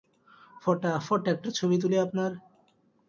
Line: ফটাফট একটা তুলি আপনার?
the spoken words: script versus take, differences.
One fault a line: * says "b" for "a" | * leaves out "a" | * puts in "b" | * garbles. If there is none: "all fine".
* puts in "ছবি"